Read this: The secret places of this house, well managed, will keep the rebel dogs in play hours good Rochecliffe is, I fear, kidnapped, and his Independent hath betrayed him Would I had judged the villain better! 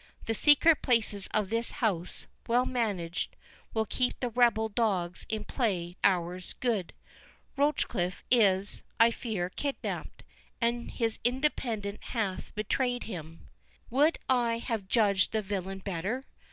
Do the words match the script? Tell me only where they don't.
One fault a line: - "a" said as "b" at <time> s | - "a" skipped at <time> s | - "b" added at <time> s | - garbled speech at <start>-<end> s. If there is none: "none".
none